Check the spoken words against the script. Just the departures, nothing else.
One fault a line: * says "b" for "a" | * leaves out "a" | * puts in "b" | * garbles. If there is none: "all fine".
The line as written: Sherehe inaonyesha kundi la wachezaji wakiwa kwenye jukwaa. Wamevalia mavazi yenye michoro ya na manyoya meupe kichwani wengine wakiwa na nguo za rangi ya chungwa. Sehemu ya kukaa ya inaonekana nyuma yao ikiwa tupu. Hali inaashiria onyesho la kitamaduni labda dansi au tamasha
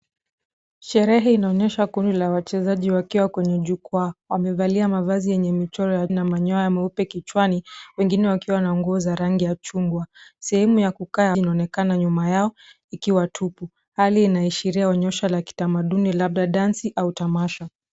all fine